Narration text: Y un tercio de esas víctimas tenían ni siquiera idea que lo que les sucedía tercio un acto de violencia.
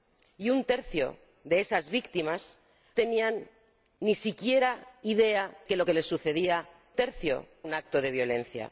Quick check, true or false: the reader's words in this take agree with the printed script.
true